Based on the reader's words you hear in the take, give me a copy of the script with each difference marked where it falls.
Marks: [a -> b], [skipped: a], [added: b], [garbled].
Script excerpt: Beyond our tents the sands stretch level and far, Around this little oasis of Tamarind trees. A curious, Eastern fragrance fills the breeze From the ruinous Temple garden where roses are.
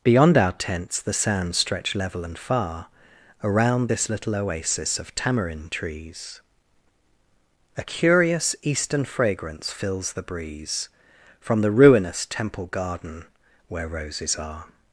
Beyond our tents the sands stretch level and far, Around this little oasis of Tamarind trees. A curious, Eastern fragrance fills the breeze From the ruinous Temple garden where roses are.